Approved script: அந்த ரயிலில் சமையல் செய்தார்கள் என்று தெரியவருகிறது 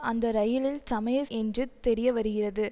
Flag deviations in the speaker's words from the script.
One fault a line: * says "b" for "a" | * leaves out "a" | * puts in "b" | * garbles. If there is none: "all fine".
* leaves out "செய்தார்கள்"